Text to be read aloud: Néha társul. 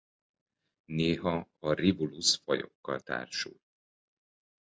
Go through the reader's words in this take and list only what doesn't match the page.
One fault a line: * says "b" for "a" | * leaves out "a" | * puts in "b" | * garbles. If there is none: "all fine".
* puts in "a Rivulus fajokkal"